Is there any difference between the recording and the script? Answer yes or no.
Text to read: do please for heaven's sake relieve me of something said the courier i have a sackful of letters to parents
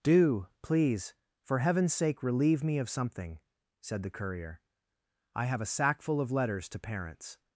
no